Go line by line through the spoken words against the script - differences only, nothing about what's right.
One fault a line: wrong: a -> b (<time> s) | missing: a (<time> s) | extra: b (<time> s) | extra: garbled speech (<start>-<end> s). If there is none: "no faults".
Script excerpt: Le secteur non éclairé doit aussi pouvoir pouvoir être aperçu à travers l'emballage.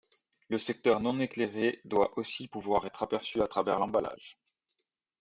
missing: pouvoir (2.9 s)